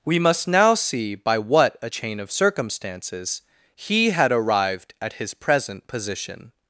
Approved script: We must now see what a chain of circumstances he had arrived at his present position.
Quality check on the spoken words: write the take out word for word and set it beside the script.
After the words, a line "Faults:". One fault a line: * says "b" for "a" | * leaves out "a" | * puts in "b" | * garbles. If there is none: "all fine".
We must now see by what a chain of circumstances he had arrived at his present position.
Faults:
* puts in "by"